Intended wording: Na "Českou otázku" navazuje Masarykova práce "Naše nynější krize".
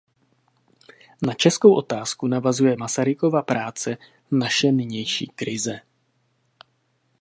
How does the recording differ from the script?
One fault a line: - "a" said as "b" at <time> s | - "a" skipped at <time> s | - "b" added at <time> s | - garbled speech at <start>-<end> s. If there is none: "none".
none